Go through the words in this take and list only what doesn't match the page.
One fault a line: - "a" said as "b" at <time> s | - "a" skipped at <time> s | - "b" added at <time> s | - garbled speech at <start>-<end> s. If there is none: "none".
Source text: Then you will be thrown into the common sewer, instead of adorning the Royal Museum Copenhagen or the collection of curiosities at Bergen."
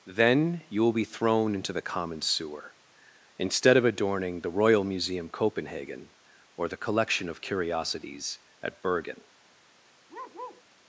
none